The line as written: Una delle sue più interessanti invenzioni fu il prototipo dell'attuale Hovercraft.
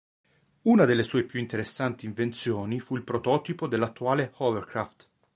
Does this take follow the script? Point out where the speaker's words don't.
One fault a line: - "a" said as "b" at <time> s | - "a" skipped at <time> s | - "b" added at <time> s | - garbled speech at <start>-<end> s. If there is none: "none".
none